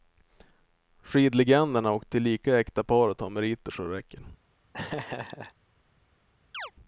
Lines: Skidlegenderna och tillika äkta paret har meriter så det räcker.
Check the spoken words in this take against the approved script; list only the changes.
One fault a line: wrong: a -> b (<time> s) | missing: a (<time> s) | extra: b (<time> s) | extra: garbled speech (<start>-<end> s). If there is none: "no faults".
no faults